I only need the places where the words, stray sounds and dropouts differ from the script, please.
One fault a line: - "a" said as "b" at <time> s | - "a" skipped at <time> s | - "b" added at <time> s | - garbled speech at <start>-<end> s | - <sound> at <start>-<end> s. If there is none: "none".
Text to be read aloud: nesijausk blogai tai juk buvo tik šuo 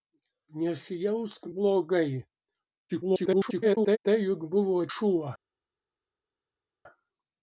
- garbled speech at 2.9-4.0 s
- "tik" skipped at 4.8 s